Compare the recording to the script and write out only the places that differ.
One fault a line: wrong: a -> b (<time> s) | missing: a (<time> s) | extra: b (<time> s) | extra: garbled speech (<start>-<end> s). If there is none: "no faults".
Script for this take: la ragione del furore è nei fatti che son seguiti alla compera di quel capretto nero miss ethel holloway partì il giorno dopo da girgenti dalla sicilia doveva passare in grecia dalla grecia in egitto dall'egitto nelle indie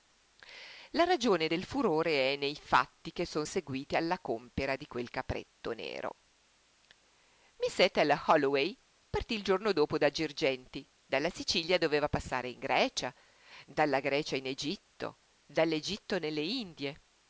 no faults